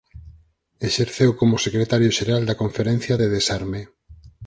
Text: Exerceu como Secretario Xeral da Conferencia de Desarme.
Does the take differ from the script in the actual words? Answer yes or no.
no